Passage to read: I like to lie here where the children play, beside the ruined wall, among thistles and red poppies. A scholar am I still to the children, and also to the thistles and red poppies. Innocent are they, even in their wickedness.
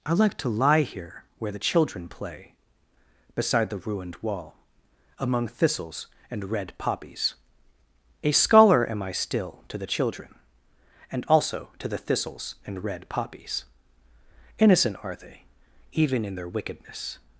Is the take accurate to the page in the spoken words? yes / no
yes